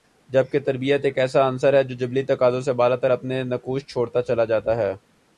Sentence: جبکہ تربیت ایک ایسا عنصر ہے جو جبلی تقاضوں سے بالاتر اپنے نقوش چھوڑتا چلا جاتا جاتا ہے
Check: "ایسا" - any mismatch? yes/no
no